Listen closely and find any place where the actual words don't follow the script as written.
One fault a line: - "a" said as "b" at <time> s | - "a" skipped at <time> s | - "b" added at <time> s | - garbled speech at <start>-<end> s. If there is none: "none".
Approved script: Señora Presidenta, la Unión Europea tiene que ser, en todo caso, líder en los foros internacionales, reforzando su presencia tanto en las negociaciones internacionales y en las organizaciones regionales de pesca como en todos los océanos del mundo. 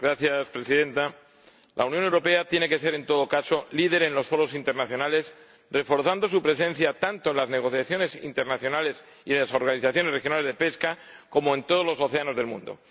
none